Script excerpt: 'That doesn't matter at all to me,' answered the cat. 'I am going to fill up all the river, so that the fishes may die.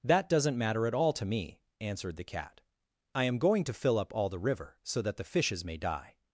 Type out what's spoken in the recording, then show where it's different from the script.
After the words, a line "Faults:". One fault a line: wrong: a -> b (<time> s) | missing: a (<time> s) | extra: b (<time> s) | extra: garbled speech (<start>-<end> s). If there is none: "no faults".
'That doesn't matter at all to me,' answered the cat. 'I am going to fill up all the river, so that the fishes may die.
Faults:
no faults